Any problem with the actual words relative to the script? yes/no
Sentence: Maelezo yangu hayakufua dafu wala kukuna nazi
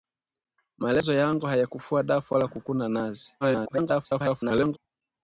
yes